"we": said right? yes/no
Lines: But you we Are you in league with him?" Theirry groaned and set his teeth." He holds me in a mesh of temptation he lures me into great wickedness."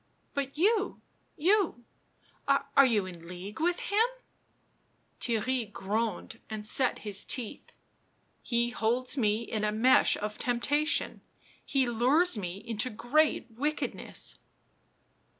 no